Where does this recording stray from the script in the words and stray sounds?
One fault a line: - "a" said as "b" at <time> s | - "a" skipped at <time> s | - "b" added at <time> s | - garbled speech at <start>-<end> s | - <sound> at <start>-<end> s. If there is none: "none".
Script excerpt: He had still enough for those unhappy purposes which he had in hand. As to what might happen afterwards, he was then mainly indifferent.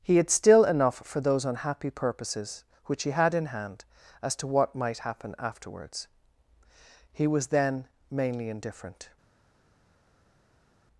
none